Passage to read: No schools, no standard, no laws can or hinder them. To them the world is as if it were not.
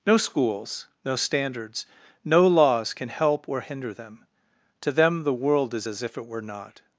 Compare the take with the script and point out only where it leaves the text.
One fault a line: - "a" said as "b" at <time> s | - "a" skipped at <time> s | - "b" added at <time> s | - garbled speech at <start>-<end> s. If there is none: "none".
- "standard" said as "standards" at 1.1 s
- "help" added at 3.1 s